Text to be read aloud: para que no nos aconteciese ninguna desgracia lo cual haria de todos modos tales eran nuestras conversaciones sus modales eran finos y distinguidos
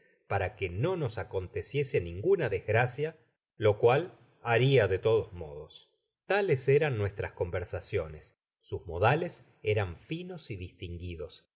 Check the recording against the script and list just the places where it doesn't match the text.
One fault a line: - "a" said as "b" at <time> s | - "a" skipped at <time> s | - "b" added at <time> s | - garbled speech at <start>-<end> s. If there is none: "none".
none